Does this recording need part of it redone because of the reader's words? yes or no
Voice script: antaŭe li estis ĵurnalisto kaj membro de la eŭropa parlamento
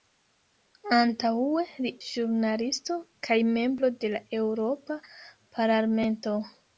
yes